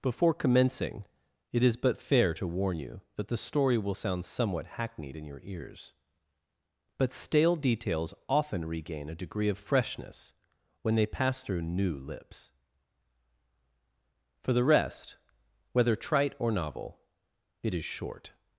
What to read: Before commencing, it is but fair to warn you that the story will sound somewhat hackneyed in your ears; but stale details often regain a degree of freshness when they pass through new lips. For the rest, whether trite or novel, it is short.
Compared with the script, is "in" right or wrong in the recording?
right